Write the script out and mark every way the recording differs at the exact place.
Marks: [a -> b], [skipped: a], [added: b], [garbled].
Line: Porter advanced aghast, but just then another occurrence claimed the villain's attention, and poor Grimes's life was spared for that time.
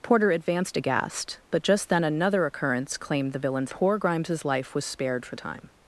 Porter advanced aghast, but just then another occurrence claimed the villain's [skipped: attention, and] poor Grimes's life was spared for [skipped: that] time.